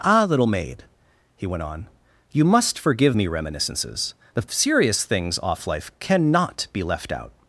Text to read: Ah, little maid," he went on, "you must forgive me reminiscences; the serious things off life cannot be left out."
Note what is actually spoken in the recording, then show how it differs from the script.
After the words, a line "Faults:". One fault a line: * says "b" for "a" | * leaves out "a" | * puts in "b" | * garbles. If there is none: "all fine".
Ah, little maid," he went on, "you must forgive me reminiscences; the serious things off life cannot be left out."
Faults:
all fine